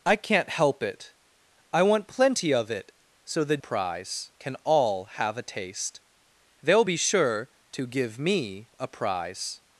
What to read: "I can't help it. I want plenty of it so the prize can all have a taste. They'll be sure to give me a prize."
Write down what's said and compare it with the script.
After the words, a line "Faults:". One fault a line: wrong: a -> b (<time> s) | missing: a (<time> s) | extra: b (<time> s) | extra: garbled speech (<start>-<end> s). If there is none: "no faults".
"I can't help it. I want plenty of it so the prize can all have a taste. They'll be sure to give me a prize."
Faults:
no faults